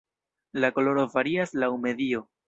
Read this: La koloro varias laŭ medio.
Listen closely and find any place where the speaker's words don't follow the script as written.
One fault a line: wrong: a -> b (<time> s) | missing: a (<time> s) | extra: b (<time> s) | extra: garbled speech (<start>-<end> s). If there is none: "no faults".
no faults